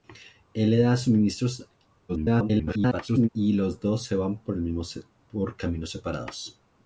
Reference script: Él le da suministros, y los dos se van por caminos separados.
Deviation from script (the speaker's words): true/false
true